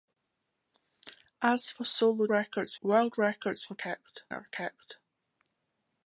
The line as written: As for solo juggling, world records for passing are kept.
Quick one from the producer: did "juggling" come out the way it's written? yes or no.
no